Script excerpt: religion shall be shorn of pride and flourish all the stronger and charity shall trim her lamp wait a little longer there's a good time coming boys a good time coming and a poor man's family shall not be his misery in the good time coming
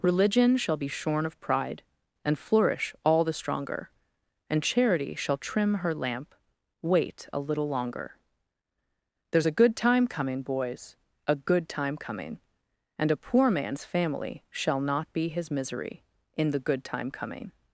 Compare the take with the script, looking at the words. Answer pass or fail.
pass